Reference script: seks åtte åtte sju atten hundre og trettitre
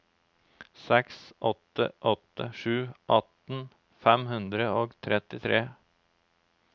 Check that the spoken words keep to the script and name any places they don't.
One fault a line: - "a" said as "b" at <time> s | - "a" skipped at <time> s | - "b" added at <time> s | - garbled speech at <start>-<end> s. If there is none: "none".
- "fem" added at 4.1 s